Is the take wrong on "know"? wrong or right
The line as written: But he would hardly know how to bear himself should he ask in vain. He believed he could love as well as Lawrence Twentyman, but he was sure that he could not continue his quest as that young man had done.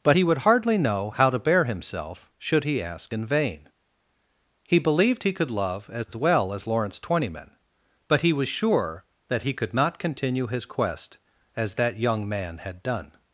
right